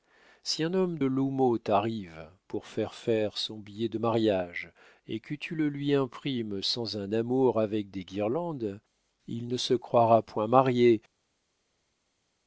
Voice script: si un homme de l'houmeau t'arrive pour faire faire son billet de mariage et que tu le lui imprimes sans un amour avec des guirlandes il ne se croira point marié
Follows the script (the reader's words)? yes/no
no